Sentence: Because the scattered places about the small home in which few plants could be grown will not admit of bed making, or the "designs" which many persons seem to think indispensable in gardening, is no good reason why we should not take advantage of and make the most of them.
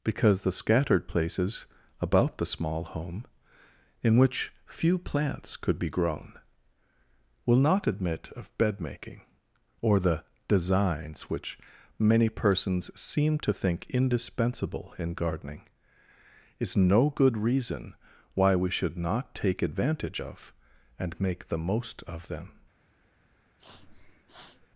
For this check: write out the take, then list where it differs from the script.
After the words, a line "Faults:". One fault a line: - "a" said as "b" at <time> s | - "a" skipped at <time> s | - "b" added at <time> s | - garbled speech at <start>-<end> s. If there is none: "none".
Because the scattered places about the small home in which few plants could be grown will not admit of bed making, or the "designs" which many persons seem to think indispensable in gardening, is no good reason why we should not take advantage of and make the most of them.
Faults:
none